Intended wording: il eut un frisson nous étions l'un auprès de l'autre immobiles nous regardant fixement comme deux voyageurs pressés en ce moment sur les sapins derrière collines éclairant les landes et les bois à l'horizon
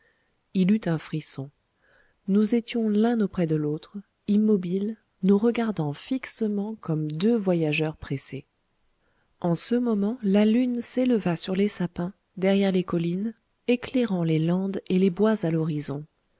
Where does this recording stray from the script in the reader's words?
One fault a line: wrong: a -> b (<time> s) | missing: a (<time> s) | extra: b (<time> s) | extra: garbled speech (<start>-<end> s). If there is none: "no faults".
extra: la lune s'éleva (10.2 s)
extra: les (12.7 s)